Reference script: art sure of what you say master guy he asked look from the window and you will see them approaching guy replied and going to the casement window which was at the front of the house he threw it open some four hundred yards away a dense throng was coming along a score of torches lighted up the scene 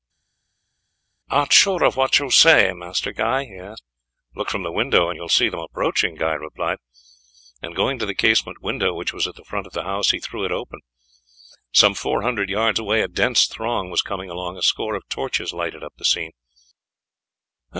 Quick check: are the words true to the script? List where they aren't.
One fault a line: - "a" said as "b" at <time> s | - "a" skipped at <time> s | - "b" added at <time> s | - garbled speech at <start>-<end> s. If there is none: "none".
none